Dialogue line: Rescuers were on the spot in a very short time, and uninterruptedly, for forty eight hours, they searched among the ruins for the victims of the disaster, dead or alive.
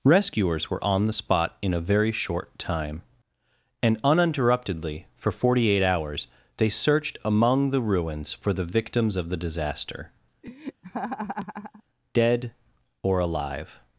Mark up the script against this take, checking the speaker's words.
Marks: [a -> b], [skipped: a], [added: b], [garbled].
Rescuers were on the spot in a very short time, and uninterruptedly, for forty eight hours, they searched among the ruins for the victims of the disaster, dead or alive.